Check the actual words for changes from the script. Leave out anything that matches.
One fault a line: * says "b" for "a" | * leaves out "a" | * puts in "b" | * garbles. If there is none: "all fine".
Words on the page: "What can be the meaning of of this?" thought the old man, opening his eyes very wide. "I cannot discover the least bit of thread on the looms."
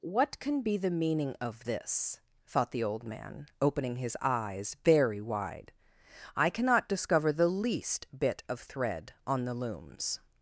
* leaves out "of"